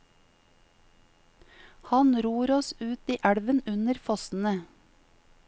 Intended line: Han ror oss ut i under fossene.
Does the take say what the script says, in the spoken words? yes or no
no